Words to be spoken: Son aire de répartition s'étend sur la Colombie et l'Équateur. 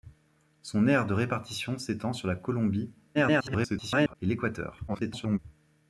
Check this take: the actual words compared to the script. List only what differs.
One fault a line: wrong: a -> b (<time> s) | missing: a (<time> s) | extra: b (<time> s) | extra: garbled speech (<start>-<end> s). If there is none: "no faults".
extra: garbled speech (3.1-4.1 s)
extra: garbled speech (4.9-5.4 s)